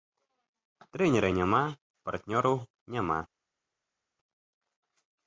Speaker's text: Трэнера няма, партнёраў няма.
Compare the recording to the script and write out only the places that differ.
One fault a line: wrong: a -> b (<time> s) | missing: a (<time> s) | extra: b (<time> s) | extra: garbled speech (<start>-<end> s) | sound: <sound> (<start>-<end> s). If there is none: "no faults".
no faults